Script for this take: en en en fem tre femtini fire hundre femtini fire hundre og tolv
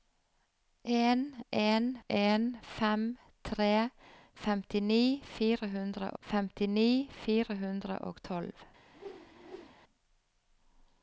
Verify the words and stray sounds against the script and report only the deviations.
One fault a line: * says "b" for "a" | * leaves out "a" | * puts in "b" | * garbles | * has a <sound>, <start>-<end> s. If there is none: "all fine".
* has a whoosh, 8.9-9.8 s